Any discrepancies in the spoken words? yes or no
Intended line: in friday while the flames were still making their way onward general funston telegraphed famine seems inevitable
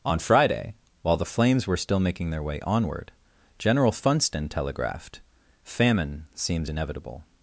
yes